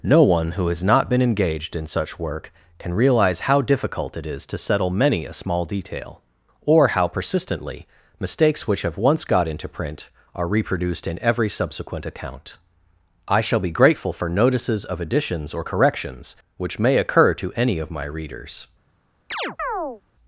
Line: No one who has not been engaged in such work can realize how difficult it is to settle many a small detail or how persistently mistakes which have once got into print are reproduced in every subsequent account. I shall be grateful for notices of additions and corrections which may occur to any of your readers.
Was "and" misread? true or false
true